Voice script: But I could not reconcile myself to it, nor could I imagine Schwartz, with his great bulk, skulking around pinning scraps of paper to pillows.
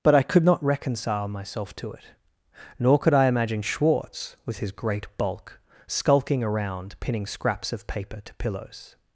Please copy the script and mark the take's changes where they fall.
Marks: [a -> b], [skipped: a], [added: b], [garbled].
But I could not reconcile myself to it, nor could I imagine Schwartz, with his great bulk, skulking around pinning scraps of paper to pillows.